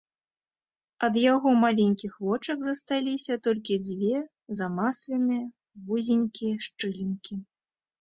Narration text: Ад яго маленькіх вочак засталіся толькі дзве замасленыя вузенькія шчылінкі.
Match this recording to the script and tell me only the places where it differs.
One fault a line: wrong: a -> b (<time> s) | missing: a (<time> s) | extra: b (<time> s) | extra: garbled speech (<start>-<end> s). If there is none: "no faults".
no faults